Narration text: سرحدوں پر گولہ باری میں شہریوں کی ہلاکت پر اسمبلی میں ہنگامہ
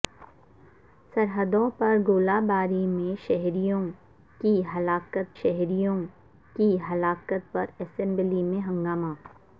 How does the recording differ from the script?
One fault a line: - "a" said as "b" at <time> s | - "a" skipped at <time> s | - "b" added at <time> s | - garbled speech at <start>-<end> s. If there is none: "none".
- "شہریوں کی ہلاکت" added at 5.4 s